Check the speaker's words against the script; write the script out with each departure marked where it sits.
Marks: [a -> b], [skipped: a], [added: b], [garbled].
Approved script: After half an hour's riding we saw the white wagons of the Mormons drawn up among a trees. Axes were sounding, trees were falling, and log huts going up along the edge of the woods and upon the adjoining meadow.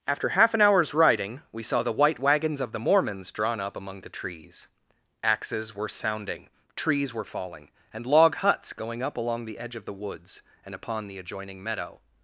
After half an hour's riding we saw the white wagons of the Mormons drawn up among [a -> the] trees. Axes were sounding, trees were falling, and log huts going up along the edge of the woods and upon the adjoining meadow.